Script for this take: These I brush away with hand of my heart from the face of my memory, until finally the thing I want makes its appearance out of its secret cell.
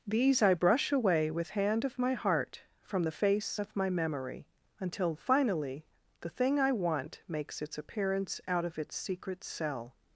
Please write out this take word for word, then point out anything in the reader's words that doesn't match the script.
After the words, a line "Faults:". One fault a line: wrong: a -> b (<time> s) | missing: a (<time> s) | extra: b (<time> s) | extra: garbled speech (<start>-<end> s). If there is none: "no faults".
These I brush away with hand of my heart from the face of my memory, until finally the thing I want makes its appearance out of its secret cell.
Faults:
no faults